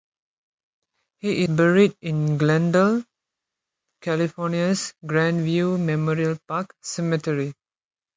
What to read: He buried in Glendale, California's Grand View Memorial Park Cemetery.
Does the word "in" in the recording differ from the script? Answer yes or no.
no